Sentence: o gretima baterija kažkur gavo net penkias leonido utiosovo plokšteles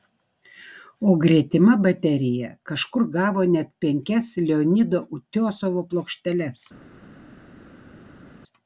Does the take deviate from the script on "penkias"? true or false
false